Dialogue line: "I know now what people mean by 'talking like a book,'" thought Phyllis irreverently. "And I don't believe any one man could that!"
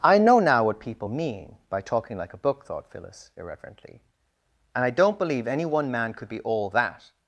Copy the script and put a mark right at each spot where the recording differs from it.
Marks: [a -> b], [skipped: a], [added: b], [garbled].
"I know now what people mean by 'talking like a book,'" thought Phyllis irreverently. "And I don't believe any one man could [added: be all] that!"